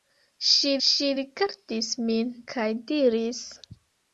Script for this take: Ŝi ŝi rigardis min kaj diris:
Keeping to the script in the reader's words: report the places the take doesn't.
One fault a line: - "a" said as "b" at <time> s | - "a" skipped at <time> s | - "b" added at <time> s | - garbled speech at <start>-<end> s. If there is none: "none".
none